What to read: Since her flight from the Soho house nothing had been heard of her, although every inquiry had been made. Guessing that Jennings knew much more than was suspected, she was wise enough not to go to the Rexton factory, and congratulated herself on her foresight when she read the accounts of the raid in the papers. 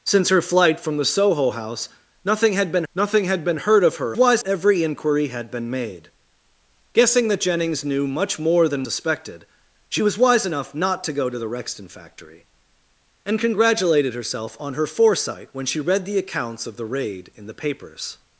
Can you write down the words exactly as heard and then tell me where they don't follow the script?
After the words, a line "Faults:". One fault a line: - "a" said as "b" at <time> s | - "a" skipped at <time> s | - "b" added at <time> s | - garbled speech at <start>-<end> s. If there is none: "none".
Since her flight from the Soho house nothing had been nothing had been heard of her, wise every inquiry had been made. Guessing that Jennings knew much more than suspected, she was wise enough not to go to the Rexton factory, and congratulated herself on her foresight when she read the accounts of the raid in the papers.
Faults:
- "nothing had been" added at 2.9 s
- "although" said as "wise" at 4.2 s
- "was" skipped at 8.9 s